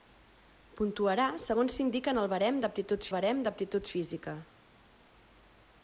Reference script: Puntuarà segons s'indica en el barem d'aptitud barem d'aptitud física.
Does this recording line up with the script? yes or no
yes